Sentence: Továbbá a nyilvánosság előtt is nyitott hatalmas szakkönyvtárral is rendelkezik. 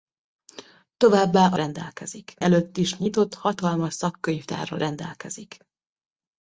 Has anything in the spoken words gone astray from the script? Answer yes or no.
yes